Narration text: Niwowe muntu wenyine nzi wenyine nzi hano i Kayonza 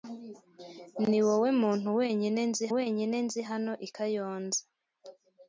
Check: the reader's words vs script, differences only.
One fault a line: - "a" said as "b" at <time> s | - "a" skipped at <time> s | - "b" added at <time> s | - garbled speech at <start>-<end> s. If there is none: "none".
none